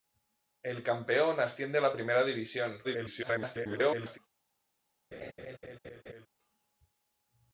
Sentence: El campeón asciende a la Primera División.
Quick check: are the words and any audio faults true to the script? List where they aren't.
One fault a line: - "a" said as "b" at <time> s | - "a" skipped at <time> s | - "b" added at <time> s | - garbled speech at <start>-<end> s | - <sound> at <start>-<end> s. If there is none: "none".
- garbled speech at 2.8-4.2 s
- laugh at 5.1-6.3 s